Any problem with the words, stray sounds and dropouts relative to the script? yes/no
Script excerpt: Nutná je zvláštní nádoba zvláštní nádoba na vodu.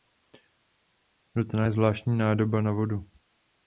yes